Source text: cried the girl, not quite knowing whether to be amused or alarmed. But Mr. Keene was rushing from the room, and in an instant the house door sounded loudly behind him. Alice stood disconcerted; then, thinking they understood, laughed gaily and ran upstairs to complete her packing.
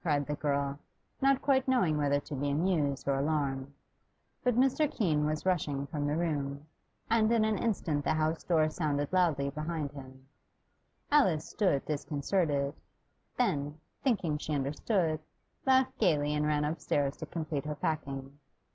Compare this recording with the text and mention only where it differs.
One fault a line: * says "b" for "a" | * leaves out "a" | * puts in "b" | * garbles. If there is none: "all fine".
* says "she" for "they"